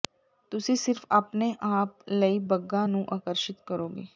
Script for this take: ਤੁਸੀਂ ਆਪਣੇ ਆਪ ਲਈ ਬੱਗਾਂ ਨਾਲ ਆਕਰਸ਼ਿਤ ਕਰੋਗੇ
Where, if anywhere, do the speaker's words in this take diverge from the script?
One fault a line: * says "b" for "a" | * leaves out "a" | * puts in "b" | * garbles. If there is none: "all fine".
* puts in "ਸਿਰਫ"
* says "ਨੂੰ" for "ਨਾਲ"